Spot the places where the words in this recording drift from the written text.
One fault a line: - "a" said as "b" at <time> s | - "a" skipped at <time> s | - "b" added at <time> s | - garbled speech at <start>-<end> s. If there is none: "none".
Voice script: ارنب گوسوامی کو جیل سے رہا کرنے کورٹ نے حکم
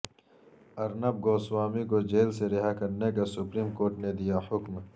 - "کا سپریم" added at 3.1 s
- "دیا" added at 4.1 s